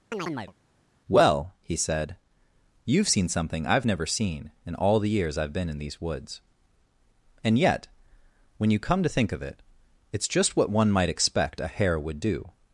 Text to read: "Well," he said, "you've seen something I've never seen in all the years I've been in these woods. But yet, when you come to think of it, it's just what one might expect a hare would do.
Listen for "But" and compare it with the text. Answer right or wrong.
wrong